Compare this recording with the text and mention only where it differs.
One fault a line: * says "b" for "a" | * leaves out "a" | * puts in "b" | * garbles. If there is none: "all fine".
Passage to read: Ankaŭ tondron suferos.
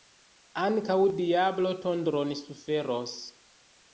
* puts in "diablo"